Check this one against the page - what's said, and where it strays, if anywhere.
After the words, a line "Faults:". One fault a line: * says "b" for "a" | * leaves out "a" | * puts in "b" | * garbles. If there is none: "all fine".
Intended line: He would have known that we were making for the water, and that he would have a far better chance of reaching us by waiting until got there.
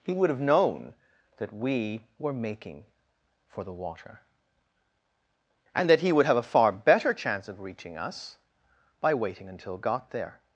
He would have known that we were making for the water, and that he would have a far better chance of reaching us by waiting until got there.
Faults:
all fine